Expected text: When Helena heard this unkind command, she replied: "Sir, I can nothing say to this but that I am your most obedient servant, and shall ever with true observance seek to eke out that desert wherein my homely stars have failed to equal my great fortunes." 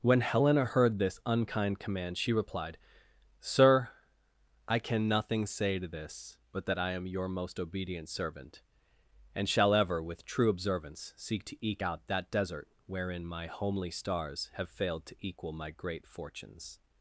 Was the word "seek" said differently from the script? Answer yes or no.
no